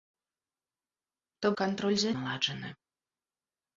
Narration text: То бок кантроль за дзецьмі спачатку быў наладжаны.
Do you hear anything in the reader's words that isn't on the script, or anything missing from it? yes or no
yes